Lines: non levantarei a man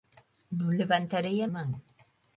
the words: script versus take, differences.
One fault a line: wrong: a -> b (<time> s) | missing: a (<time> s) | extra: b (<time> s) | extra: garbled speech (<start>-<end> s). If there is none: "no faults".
no faults